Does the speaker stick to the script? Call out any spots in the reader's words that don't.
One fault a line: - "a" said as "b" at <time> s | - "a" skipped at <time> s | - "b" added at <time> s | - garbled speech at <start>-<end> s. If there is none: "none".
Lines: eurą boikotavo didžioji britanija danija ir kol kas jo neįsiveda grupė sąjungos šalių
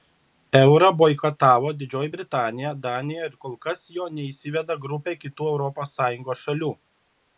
- "kitų europos" added at 5.3 s